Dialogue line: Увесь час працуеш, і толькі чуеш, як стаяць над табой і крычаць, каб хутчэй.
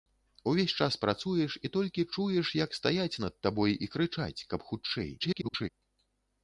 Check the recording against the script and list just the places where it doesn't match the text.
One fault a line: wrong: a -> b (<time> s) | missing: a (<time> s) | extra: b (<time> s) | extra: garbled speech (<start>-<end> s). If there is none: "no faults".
extra: garbled speech (5.2-5.7 s)